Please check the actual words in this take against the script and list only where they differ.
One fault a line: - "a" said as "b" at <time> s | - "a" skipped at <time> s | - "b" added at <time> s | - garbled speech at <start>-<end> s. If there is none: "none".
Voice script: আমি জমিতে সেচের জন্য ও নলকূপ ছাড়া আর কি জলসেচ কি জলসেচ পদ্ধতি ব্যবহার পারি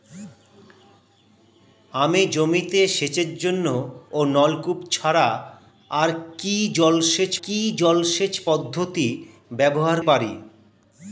none